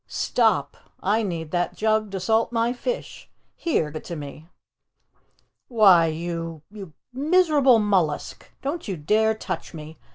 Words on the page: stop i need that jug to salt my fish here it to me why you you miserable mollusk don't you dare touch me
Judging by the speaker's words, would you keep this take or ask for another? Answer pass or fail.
pass